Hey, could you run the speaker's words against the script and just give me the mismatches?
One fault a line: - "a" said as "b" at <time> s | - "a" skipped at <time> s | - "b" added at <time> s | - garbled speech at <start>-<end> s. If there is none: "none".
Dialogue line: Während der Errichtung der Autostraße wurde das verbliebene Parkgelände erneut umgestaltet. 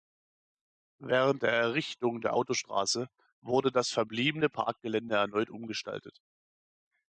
none